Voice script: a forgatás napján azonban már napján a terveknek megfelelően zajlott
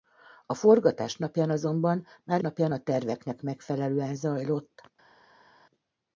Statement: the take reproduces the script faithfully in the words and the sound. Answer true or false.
true